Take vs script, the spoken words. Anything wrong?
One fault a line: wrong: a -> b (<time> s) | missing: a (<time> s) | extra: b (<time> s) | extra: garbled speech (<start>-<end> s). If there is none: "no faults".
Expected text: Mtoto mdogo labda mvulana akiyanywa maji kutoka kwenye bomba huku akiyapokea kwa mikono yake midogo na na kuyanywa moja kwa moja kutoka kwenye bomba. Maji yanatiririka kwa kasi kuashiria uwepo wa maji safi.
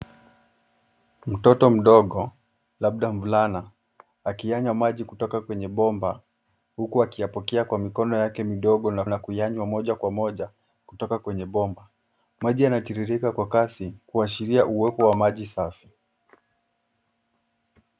no faults